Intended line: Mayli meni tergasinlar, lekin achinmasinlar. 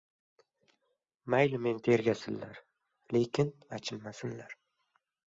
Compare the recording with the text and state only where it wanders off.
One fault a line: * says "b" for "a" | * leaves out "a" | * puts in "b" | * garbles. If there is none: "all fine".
all fine